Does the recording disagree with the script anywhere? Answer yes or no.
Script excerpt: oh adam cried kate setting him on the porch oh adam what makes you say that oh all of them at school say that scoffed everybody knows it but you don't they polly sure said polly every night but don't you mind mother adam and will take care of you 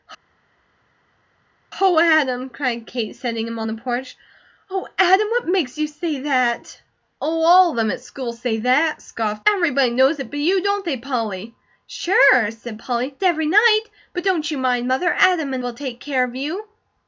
no